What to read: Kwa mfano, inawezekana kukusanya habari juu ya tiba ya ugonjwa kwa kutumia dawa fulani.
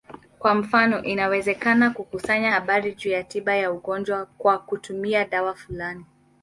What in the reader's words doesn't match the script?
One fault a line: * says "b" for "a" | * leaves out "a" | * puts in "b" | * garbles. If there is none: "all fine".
all fine